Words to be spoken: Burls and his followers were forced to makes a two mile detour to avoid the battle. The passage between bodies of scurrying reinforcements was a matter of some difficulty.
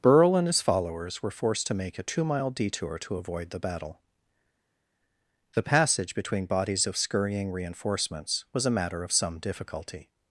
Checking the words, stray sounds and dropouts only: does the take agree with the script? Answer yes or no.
no